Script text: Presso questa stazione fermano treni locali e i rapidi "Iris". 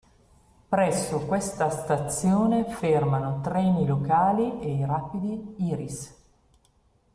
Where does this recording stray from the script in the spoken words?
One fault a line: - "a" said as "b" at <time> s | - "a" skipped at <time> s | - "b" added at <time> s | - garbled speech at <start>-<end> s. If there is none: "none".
none